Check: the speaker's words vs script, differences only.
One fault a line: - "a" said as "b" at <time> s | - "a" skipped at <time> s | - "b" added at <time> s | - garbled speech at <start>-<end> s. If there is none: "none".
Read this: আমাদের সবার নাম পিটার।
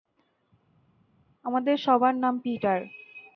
none